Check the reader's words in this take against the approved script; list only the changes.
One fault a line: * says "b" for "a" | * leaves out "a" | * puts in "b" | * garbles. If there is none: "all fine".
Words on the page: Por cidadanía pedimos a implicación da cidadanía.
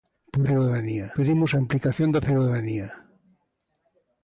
all fine